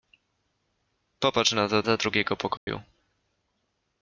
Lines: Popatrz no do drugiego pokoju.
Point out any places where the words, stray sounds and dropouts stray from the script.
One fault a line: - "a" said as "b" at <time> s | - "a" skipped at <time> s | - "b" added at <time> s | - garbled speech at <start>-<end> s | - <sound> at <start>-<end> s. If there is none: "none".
- "do" added at 1.8 s
- dropout at 2.6-2.7 s